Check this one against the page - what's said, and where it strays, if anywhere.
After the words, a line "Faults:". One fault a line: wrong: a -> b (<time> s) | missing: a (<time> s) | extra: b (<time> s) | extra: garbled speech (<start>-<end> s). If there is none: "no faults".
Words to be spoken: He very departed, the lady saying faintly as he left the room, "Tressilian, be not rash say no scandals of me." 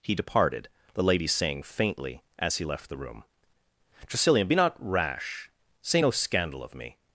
He departed, the lady saying faintly as he left the room, "Tressilian, be not rash say no scandal of me."
Faults:
missing: very (0.1 s)
wrong: scandals -> scandal (6.1 s)